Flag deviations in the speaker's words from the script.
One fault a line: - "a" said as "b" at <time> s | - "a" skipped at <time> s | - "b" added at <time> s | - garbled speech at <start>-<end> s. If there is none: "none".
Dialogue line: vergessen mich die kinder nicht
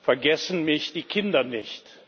none